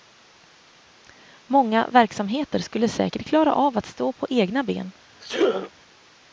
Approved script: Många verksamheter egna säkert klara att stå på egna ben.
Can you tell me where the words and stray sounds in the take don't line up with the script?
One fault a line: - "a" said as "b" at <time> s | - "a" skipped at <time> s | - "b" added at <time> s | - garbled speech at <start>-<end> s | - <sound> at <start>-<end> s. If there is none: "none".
- "egna" said as "skulle" at 2.6 s
- "av" added at 3.5 s
- sneeze at 5.2-5.7 s